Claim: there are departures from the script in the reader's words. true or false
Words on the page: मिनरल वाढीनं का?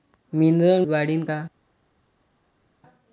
false